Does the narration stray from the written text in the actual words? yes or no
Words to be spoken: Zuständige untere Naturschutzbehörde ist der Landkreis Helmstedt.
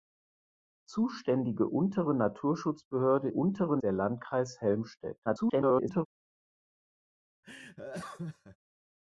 yes